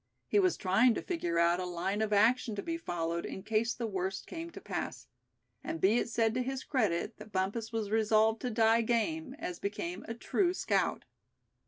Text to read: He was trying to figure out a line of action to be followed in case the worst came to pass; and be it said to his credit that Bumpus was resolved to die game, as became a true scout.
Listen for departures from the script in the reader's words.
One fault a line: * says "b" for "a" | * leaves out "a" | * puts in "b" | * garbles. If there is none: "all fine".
all fine